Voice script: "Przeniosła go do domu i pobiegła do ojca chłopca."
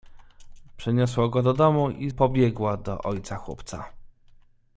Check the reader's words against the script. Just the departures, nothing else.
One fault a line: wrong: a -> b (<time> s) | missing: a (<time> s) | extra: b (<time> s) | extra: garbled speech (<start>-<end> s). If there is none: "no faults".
no faults